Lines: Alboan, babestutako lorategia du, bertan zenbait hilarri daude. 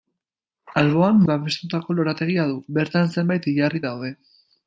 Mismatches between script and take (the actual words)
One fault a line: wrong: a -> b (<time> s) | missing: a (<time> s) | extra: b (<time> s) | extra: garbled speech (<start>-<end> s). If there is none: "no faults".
no faults